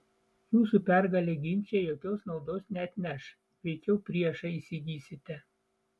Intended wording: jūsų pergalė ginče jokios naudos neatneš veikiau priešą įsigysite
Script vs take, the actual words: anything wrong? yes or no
no